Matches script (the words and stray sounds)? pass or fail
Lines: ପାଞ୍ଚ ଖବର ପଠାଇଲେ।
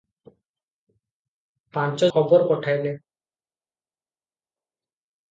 pass